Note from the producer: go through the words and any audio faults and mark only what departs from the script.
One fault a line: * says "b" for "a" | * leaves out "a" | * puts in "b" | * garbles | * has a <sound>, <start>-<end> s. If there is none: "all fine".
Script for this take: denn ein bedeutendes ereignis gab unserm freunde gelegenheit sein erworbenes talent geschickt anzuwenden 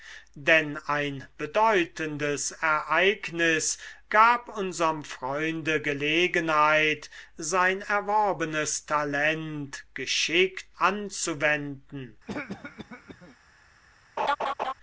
* has a cough, 12.3-13.4 s
* has a laugh, 14.2-14.7 s